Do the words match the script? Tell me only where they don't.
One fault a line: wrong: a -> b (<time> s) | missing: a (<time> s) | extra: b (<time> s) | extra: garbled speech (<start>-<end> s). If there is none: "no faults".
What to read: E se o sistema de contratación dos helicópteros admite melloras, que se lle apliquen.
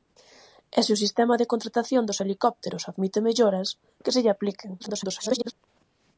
extra: garbled speech (4.8-5.5 s)